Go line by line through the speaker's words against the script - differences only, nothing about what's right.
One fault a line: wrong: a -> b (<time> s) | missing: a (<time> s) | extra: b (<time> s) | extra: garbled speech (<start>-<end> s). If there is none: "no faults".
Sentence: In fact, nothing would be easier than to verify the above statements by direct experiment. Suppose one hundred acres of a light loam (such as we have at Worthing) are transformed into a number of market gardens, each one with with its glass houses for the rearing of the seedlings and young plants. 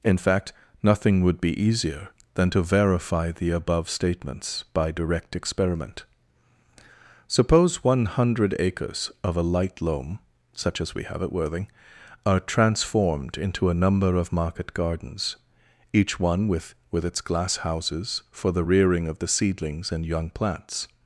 no faults